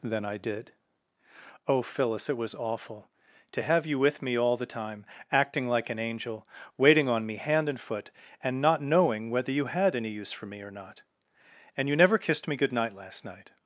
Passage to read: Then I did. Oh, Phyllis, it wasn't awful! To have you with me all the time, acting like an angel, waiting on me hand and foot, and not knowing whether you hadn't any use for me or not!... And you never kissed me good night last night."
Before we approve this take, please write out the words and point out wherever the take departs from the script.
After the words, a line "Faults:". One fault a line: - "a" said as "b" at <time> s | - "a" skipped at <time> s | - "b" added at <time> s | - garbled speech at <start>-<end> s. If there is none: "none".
Then I did. Oh, Phyllis, it was awful! To have you with me all the time, acting like an angel, waiting on me hand and foot, and not knowing whether you had any use for me or not!... And you never kissed me good night last night."
Faults:
- "wasn't" said as "was" at 2.4 s
- "hadn't" said as "had" at 9.7 s